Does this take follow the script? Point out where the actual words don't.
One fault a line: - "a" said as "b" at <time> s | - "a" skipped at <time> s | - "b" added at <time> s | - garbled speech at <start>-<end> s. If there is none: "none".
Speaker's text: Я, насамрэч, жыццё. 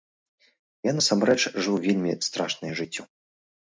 - "жыў вельмі страшнае" added at 1.6 s